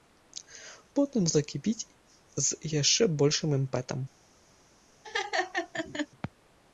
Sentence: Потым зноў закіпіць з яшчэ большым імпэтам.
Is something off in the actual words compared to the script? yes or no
yes